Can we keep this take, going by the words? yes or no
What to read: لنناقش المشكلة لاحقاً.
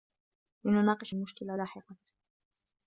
yes